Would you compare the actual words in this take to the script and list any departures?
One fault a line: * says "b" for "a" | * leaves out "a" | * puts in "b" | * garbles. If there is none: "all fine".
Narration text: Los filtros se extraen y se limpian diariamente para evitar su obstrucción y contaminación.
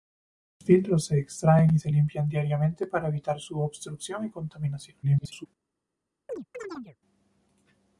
* garbles